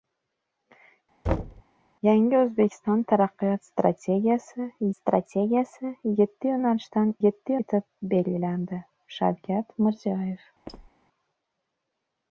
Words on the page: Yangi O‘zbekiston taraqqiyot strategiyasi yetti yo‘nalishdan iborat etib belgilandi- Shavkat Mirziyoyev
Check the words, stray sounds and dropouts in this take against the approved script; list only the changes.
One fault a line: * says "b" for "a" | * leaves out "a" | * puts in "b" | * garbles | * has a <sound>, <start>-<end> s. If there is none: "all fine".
* has a thud, 1.3-1.6 s
* puts in "strategiyasi"
* says "yetti" for "iborat"
* has a squeak, 10.7-10.9 s